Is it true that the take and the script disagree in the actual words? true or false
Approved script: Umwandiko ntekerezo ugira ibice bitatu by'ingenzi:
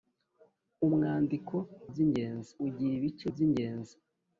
true